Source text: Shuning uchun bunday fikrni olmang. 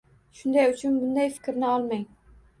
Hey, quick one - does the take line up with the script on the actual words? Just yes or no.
yes